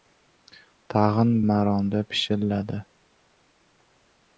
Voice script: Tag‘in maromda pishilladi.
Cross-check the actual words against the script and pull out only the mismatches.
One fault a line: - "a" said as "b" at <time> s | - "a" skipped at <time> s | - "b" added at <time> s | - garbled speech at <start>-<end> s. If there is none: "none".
none